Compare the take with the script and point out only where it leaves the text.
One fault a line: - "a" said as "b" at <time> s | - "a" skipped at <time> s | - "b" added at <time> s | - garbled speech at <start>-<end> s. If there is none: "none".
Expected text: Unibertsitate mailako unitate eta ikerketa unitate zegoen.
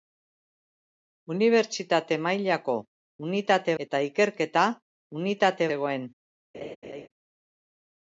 none